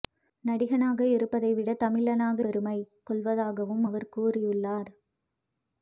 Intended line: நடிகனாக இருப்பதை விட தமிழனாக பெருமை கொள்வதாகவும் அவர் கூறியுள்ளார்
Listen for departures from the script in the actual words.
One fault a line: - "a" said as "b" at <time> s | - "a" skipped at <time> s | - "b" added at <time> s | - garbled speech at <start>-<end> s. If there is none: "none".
none